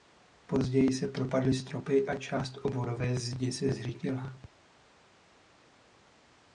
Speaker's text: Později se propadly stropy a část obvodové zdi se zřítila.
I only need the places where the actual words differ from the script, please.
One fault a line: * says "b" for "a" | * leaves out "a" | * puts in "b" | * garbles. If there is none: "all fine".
all fine